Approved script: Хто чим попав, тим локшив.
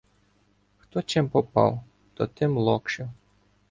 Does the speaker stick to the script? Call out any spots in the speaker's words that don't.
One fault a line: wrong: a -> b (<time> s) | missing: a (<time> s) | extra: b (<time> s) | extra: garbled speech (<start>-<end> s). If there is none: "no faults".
extra: то (2.1 s)